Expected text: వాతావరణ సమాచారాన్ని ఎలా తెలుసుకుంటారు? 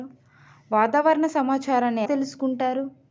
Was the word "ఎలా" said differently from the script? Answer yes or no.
yes